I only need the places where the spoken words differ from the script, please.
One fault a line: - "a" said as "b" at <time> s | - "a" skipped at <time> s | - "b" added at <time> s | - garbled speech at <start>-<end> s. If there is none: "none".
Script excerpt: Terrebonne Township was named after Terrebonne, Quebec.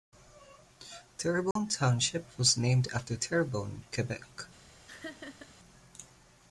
none